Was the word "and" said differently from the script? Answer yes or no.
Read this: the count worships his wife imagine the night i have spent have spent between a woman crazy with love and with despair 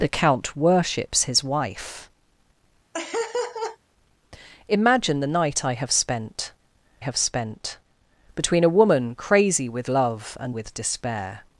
no